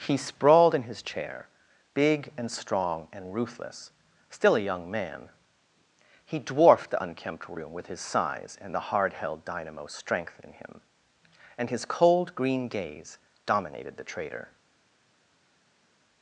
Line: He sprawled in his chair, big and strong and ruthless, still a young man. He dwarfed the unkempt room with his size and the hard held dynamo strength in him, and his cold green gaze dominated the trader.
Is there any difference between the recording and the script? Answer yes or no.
no